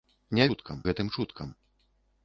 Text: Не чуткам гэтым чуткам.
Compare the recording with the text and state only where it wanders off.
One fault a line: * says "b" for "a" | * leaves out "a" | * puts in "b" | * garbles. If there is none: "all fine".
all fine